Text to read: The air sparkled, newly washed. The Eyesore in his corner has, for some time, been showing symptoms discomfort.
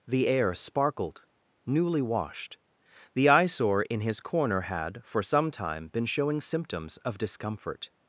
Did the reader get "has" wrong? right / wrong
wrong